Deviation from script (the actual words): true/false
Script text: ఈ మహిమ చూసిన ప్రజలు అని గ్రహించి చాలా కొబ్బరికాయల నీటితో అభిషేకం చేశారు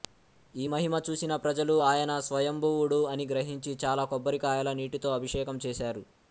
true